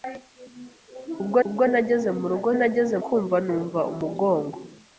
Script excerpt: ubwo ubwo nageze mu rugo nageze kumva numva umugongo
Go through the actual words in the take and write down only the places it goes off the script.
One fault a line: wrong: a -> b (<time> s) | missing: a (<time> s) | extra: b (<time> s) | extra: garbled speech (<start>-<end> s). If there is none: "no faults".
no faults